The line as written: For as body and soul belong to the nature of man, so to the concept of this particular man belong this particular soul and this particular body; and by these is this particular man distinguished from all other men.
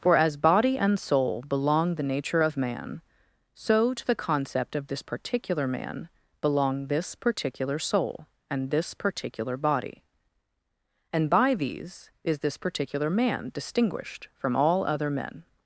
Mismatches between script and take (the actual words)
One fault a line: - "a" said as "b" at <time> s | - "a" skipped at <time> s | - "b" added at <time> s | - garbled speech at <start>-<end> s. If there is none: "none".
- "to" skipped at 1.9 s